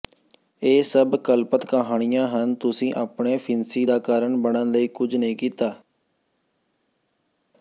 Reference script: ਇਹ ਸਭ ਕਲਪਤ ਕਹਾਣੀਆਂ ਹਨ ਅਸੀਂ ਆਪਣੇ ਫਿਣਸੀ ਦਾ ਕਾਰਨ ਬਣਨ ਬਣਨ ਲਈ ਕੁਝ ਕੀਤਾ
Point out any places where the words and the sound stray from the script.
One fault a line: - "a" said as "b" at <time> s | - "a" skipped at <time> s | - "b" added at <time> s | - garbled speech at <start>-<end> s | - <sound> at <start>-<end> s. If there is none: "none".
- "ਅਸੀਂ" said as "ਤੁਸੀਂ" at 2.5 s
- "ਬਣਨ" skipped at 4.7 s
- "ਨਹੀਂ" added at 5.1 s